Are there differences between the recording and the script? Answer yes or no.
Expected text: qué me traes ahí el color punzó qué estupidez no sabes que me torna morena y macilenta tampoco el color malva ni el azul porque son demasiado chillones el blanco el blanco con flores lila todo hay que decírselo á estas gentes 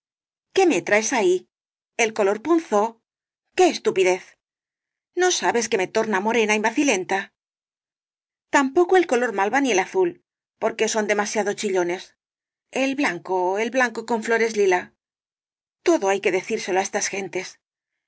no